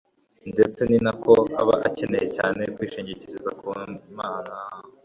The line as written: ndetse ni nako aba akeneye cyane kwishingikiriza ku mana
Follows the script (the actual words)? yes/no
yes